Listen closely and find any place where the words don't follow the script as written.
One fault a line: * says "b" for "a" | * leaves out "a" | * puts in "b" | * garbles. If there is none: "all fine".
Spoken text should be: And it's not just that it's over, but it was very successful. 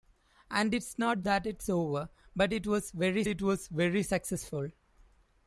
* leaves out "just"
* puts in "it was very"